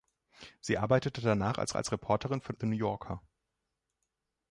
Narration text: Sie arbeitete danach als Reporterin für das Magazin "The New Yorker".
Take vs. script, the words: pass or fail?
fail